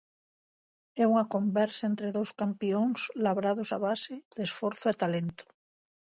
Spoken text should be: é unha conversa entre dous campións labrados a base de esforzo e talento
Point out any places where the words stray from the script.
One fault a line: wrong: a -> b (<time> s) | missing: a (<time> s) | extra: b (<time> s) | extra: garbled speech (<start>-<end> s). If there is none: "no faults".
no faults